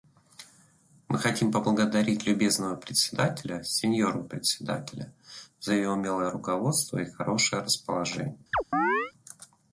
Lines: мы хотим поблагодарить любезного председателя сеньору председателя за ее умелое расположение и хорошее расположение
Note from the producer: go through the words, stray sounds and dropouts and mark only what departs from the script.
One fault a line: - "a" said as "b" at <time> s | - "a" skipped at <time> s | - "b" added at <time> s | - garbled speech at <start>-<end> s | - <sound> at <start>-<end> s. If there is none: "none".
- "расположение" said as "руководство" at 6.3 s
- chirp at 8.5-9.1 s